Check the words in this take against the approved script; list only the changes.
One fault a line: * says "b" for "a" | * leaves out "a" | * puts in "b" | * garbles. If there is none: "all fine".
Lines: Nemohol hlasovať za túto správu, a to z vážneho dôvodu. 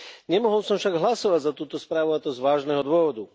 * puts in "som však"